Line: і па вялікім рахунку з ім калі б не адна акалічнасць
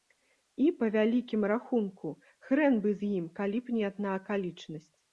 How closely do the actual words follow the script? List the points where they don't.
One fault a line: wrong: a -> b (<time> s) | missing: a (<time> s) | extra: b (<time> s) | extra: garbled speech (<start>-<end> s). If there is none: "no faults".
extra: хрэн бы (2.5 s)